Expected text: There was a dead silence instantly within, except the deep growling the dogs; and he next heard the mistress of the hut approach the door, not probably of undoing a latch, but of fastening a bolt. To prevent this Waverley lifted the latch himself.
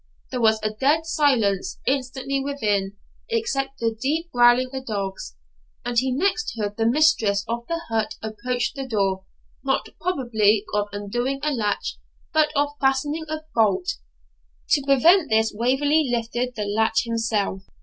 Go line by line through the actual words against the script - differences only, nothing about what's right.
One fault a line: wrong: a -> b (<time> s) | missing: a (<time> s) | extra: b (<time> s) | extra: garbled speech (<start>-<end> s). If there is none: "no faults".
no faults